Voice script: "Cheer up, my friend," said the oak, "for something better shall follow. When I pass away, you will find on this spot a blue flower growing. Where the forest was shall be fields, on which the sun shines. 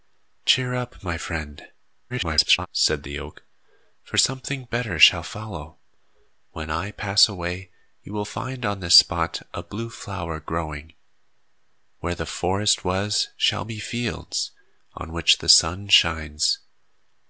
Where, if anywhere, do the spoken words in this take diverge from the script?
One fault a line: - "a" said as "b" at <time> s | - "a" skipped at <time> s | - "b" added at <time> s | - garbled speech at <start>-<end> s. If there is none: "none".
- garbled speech at 2.1-2.7 s